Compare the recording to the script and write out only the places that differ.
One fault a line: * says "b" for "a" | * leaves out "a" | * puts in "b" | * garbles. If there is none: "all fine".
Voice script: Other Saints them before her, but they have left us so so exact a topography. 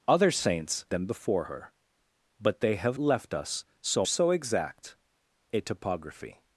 all fine